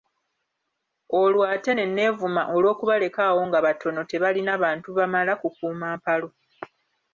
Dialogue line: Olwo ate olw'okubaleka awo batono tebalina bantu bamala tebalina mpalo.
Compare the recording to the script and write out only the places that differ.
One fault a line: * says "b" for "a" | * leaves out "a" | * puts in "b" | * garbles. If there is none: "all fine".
* puts in "ne neevuma"
* puts in "nga"
* says "kukuuma" for "tebalina"